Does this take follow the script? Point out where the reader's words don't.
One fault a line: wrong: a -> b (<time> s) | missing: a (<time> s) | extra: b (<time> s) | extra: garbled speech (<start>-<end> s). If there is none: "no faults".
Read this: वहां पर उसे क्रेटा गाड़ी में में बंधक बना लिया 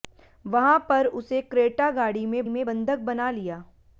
no faults